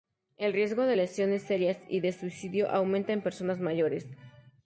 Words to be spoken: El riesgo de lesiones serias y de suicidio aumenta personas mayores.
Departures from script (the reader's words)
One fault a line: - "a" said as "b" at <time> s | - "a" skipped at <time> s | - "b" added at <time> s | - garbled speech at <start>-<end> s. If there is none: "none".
- "en" added at 3.1 s